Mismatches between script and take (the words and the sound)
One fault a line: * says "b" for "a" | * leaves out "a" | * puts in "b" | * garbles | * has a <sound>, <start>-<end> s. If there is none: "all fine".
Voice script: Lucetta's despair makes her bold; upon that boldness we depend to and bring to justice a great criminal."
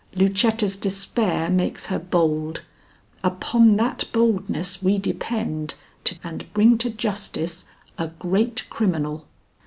all fine